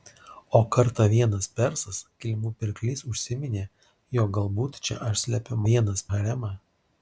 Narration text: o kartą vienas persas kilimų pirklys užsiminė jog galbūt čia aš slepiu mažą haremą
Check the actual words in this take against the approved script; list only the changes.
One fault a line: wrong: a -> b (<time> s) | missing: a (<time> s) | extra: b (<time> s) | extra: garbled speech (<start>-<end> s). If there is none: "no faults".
wrong: mažą -> vienas (5.7 s)